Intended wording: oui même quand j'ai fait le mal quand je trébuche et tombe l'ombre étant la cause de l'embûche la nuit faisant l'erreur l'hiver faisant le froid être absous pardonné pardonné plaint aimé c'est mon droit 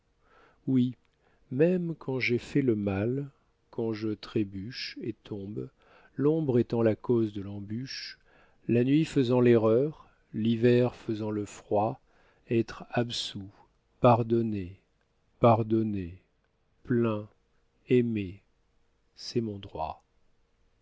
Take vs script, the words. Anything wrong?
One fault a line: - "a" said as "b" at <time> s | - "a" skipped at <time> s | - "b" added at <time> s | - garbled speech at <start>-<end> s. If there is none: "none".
none